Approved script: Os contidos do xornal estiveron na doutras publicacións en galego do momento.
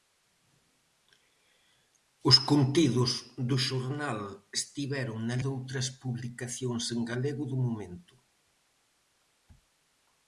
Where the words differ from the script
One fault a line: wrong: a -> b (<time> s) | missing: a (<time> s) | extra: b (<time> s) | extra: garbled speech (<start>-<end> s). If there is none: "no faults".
no faults